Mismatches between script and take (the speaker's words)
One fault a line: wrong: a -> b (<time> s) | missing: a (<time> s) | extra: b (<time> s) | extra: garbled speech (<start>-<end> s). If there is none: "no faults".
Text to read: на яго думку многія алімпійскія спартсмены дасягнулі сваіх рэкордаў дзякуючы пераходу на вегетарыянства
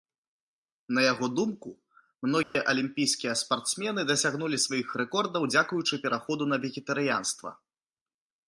no faults